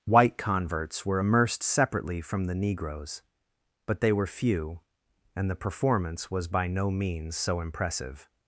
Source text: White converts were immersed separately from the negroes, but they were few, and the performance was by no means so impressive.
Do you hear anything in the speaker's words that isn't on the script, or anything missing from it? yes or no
no